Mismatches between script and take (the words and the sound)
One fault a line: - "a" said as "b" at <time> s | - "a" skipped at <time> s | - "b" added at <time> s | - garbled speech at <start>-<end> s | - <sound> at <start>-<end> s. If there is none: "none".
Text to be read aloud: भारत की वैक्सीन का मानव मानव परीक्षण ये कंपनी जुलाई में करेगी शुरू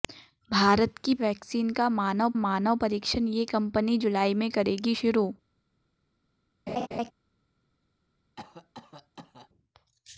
- laugh at 6.7-7.1 s
- cough at 8.4-9.5 s